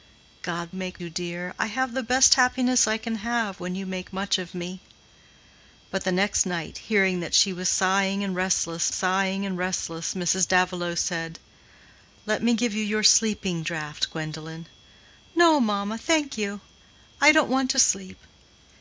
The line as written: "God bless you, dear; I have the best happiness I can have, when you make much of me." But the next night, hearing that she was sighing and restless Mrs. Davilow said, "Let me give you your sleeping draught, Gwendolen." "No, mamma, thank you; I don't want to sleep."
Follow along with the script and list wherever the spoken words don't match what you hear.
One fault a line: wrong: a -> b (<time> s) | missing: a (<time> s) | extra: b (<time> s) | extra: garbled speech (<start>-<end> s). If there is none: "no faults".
wrong: bless -> make (0.7 s)
extra: sighing and restless (8.9 s)